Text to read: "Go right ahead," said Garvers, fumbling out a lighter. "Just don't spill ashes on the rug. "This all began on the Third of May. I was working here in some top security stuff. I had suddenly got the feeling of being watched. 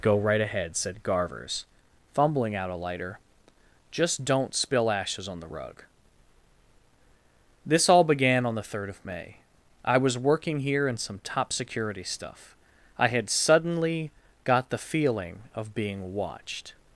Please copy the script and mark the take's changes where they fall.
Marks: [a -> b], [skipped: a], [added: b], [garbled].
"Go right ahead," said Garvers, fumbling out a lighter. "Just don't spill ashes on the rug. "This all began on the Third of May. I was working here in some top security stuff. I had suddenly got the feeling of being watched.